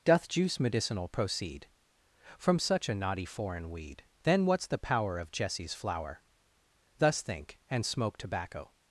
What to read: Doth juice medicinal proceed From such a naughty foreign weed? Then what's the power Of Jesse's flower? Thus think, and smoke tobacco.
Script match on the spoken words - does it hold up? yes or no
yes